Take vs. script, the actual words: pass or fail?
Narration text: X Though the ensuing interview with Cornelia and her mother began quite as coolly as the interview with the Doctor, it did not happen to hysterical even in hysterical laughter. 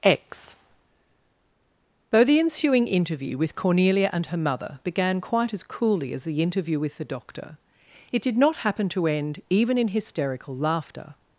fail